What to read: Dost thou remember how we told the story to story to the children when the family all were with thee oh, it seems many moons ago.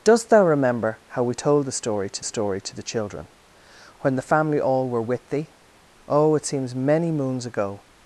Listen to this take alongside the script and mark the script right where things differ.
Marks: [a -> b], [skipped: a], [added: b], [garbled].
Dost thou remember how we told the story to story to the children when the family all were with thee oh, it seems many moons ago.